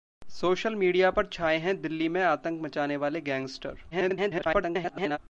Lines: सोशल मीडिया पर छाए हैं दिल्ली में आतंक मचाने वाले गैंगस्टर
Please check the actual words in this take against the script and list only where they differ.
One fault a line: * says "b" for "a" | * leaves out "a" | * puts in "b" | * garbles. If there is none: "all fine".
* garbles